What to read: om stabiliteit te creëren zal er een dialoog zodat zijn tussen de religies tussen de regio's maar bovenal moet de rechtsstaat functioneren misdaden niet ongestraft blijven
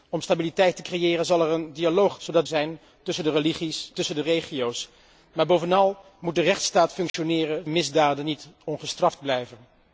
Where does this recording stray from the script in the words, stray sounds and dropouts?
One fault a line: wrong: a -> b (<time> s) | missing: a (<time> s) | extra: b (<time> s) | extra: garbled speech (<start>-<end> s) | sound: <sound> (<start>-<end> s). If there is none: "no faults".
sound: dropout (7.1-7.1 s)